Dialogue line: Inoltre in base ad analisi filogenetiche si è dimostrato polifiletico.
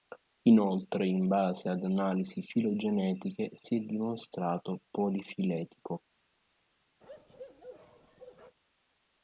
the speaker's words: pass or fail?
pass